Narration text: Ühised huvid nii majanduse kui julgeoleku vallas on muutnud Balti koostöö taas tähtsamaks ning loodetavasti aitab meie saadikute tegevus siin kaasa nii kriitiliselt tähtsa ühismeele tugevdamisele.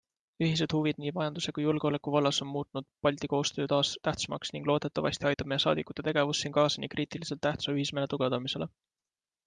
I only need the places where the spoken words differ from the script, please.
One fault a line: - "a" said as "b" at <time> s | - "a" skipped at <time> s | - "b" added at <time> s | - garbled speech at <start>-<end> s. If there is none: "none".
none